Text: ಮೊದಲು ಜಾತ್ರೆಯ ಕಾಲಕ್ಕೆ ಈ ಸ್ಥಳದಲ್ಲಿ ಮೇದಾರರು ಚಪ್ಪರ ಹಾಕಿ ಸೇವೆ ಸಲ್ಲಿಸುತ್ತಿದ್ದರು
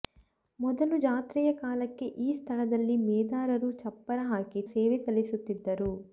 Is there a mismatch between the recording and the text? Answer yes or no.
no